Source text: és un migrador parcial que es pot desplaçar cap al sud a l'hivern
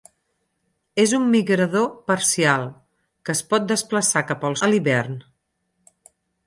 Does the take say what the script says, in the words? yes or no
no